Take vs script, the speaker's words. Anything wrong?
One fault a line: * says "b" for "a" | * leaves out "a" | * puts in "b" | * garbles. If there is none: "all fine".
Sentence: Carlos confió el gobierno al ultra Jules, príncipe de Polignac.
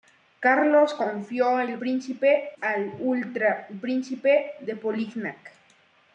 * says "príncipe" for "gobierno"
* leaves out "Jules"